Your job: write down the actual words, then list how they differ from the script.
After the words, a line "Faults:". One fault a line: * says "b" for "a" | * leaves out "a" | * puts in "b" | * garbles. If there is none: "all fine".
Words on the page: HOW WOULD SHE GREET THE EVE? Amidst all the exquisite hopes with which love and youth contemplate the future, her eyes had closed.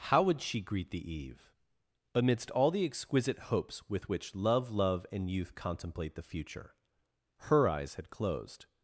HOW WOULD SHE GREET THE EVE? Amidst all the exquisite hopes with which love love and youth contemplate the future, her eyes had closed.
Faults:
* puts in "love"